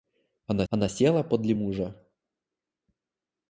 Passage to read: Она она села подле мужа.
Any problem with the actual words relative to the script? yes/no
no